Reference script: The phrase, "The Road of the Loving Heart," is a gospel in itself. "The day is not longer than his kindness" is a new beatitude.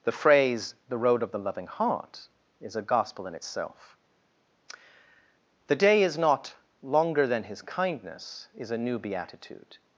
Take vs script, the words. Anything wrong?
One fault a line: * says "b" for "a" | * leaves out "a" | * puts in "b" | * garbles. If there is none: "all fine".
all fine